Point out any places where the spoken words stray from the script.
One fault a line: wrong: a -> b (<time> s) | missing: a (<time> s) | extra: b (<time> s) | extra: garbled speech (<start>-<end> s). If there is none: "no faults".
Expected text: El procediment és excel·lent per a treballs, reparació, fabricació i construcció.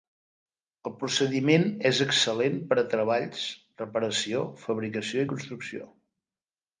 no faults